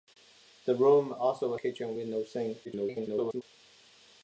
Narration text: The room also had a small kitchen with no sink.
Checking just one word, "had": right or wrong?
wrong